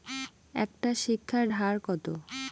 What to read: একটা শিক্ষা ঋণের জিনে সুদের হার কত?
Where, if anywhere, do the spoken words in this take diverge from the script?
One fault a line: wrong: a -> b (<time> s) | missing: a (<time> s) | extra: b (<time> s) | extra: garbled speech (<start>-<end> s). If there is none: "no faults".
missing: ঋণের জিনে সুদের (1.4 s)